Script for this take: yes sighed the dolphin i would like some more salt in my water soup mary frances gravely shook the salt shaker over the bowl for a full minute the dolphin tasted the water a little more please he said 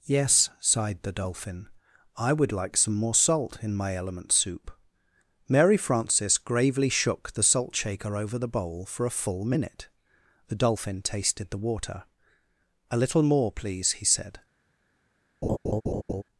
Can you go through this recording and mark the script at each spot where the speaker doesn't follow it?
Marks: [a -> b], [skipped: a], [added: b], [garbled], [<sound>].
yes sighed the dolphin i would like some more salt in my [water -> element] soup mary frances gravely shook the salt shaker over the bowl for a full minute the dolphin tasted the water a little more please he said [laugh]